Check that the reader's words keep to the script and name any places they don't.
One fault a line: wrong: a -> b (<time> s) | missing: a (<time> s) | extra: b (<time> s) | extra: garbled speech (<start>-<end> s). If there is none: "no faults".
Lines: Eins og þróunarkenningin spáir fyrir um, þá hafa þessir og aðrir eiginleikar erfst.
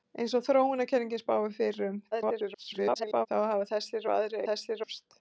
extra: garbled speech (2.1-3.3 s)
wrong: eiginleikar -> þessir (4.5 s)